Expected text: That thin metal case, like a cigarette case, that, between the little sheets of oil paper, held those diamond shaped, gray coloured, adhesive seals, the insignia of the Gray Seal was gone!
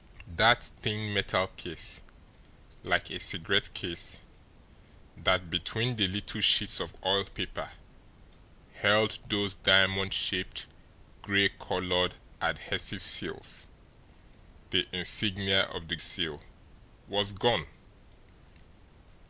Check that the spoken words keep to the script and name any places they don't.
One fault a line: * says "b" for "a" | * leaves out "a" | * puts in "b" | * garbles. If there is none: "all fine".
* leaves out "Gray"